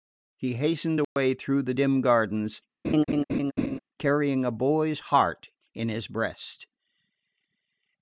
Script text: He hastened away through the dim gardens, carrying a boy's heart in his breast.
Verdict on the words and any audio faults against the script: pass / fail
fail